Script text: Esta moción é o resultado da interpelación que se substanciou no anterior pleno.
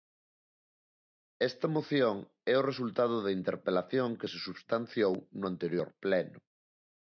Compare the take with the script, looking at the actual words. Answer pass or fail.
pass